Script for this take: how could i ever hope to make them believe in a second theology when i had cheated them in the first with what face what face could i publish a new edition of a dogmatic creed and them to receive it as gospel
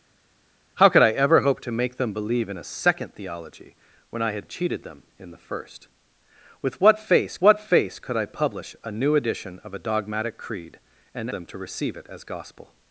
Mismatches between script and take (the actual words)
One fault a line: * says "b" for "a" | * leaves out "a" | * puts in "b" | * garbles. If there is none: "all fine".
all fine